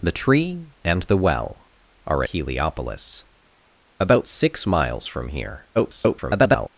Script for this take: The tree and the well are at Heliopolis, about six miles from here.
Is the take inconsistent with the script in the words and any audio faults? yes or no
yes